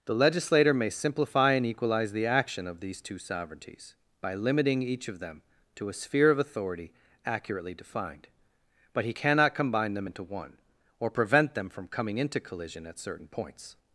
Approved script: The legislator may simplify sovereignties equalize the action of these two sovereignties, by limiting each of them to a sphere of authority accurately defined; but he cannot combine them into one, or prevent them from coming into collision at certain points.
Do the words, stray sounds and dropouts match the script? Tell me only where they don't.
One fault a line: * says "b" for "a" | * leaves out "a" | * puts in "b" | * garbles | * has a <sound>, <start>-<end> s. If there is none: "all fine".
* says "and" for "sovereignties"